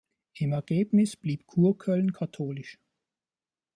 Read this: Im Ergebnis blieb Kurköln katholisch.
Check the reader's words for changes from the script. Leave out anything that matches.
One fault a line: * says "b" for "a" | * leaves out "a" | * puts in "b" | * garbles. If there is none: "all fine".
all fine